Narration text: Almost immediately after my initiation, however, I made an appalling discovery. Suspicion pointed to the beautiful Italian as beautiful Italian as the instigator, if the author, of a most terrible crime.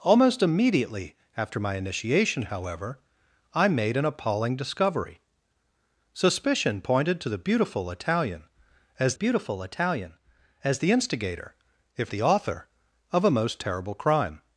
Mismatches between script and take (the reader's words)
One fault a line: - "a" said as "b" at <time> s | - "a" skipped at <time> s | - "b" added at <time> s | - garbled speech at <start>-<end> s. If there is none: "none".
none